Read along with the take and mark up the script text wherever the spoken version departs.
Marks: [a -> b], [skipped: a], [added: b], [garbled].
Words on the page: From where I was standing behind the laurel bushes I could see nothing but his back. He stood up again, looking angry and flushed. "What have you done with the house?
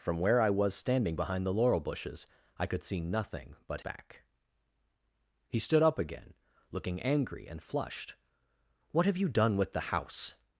From where I was standing behind the laurel bushes I could see nothing but [skipped: his] back. He stood up again, looking angry and flushed. "What have you done with the house?